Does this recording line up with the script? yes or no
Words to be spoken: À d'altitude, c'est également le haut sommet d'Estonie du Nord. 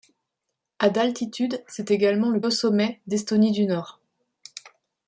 yes